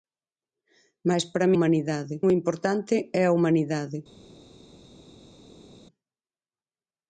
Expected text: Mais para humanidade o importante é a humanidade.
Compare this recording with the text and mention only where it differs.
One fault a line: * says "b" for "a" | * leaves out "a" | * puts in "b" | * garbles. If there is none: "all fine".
all fine